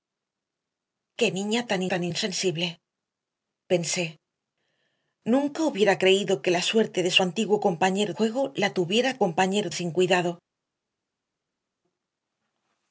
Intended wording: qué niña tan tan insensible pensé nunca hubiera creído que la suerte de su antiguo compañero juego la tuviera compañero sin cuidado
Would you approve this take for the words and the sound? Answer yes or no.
yes